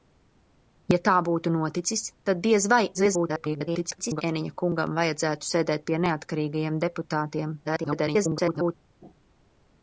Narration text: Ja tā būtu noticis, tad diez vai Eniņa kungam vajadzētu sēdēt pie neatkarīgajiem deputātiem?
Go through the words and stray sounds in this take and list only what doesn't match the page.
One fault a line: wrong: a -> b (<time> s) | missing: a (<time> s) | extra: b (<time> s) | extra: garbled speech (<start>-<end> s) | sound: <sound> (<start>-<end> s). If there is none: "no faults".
extra: garbled speech (2.9-4.2 s)
extra: garbled speech (7.6-8.7 s)